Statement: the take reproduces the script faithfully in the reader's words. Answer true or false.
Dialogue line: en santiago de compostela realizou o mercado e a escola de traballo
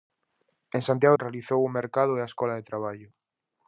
false